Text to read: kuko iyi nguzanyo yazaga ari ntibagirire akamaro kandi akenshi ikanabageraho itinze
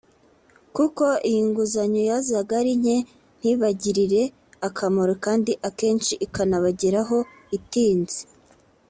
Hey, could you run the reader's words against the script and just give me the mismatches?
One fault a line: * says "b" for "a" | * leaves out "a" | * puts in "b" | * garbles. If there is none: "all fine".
* puts in "nke"